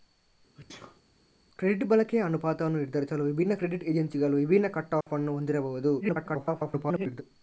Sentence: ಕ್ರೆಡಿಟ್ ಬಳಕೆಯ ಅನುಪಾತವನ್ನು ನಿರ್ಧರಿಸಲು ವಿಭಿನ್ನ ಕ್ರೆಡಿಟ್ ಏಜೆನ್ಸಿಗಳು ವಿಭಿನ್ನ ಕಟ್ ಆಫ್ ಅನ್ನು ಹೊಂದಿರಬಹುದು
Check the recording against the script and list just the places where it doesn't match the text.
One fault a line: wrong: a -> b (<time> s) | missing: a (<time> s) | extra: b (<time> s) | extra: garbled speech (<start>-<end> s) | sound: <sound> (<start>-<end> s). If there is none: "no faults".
sound: sneeze (0.6-1.0 s)
sound: dropout (5.0-5.1 s)
extra: garbled speech (6.0-7.2 s)